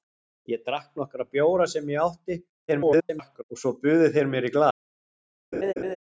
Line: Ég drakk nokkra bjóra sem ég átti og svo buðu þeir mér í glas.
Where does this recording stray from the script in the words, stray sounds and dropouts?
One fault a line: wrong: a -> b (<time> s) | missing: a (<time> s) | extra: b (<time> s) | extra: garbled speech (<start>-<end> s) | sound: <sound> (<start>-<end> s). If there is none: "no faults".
extra: garbled speech (2.7-3.4 s)
sound: laugh (5.5-6.0 s)